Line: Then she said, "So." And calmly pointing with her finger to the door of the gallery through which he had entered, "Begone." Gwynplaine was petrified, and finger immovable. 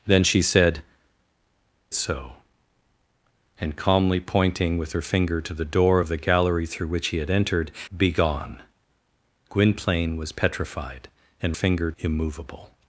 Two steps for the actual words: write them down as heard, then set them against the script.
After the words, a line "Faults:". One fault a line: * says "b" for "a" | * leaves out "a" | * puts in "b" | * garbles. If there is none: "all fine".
Then she said, "So." And calmly pointing with her finger to the door of the gallery through which he had entered, "Begone." Gwynplaine was petrified, and finger immovable.
Faults:
all fine